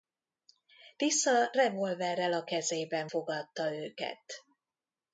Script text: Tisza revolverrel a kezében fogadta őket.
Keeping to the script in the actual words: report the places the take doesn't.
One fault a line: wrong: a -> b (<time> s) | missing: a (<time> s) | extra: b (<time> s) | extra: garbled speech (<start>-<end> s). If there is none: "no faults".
no faults